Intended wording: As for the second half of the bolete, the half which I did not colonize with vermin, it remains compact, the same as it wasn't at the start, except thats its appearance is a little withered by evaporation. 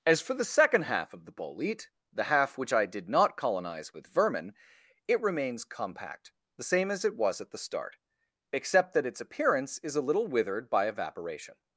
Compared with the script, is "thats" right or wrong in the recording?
wrong